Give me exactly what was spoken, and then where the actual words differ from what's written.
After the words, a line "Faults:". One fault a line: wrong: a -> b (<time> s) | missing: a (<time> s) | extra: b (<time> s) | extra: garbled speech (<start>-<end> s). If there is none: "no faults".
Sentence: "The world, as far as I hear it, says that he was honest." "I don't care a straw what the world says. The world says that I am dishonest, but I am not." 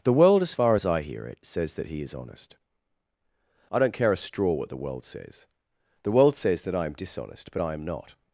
"The world, as far as I hear it, says that he is honest." "I don't care a straw what the world says. The world says that I am dishonest, but I am not."
Faults:
wrong: was -> is (2.0 s)